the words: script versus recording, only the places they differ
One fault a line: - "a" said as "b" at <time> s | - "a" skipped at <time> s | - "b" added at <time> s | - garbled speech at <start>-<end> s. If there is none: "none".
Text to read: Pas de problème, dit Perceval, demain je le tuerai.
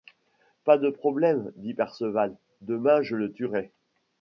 none